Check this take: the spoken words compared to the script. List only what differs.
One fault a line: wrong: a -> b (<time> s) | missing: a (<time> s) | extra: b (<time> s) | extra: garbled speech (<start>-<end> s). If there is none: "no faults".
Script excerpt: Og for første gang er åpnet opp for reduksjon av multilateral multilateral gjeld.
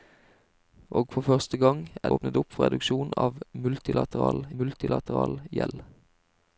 no faults